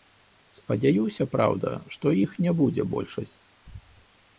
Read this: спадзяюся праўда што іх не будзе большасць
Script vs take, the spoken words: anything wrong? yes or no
no